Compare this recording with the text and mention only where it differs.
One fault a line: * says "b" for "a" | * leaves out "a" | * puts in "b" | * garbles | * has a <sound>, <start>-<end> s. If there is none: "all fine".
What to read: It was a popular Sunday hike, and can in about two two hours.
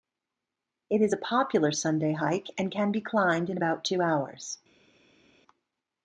* says "is" for "was"
* puts in "be climbed"
* leaves out "two"